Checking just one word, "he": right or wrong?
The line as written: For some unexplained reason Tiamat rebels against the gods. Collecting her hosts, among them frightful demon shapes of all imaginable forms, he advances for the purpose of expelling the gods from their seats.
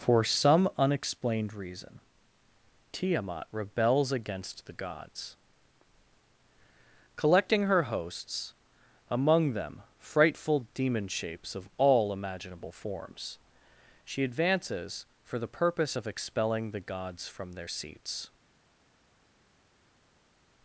wrong